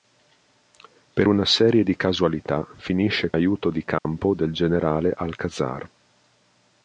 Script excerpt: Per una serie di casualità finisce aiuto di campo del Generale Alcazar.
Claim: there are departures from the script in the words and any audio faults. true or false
true